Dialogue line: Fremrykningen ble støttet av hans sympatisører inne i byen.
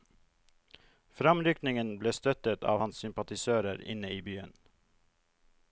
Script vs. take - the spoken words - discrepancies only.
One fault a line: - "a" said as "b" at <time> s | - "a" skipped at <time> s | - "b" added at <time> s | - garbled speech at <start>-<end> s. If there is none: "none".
none